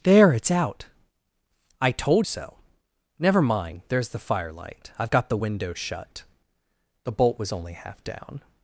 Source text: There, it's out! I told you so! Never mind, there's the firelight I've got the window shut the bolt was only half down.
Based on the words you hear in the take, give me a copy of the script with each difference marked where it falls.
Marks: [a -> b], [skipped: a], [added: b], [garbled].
There, it's out! I told [skipped: you] so! Never mind, there's the firelight I've got the window shut the bolt was only half down.